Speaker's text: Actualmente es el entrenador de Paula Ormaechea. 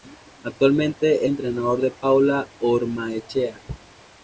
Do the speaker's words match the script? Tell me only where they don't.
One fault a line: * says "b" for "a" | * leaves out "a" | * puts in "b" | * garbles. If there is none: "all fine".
* leaves out "el"